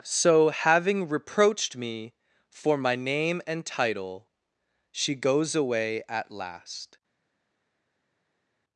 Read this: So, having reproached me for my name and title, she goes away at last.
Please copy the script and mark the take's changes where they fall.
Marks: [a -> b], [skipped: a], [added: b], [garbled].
So, having reproached me for my name and title, she goes away at last.